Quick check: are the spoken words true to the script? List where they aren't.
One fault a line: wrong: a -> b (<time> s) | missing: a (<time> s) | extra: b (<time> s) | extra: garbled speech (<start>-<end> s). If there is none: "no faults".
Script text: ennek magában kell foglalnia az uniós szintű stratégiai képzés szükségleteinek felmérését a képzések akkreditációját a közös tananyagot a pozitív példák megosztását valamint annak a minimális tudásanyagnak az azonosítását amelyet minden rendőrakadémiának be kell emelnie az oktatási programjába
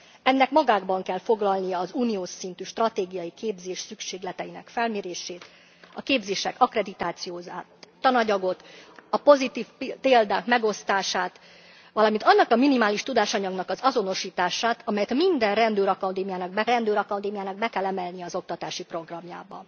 missing: a közös (7.7 s)
extra: rendőrakadémiának be (16.7 s)